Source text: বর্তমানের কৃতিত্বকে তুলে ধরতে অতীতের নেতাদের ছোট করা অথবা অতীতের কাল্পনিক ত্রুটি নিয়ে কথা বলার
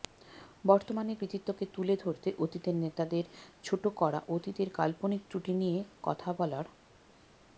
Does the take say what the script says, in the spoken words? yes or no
no